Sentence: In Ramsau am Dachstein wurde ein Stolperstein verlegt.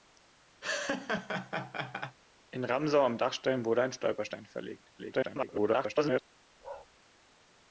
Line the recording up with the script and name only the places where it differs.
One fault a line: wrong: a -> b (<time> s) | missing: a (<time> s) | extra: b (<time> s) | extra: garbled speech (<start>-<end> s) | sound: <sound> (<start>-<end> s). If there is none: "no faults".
sound: laugh (0.6-2.2 s)
extra: garbled speech (5.0-6.2 s)
sound: bark (6.6-6.9 s)